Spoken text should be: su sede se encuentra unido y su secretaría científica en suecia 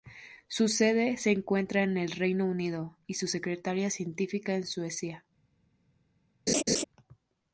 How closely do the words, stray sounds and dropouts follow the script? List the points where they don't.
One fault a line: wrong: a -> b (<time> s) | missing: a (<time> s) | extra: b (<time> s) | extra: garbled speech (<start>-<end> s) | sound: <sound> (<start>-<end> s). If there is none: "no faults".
extra: en el reino (1.8 s)
sound: laugh (6.5-6.8 s)